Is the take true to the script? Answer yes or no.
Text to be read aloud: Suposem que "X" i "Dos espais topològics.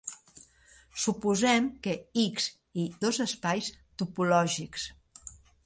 yes